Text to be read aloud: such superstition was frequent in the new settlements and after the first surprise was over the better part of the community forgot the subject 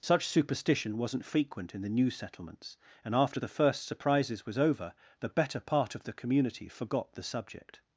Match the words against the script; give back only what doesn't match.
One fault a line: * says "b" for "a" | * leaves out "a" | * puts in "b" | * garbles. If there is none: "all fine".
* says "wasn't" for "was"
* says "surprises" for "surprise"